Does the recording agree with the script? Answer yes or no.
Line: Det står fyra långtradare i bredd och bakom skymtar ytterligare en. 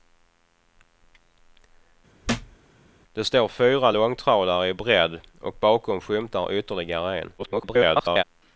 no